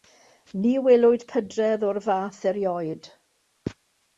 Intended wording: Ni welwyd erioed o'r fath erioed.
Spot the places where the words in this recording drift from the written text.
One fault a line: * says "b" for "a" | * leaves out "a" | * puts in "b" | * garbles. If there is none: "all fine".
* says "pydredd" for "erioed"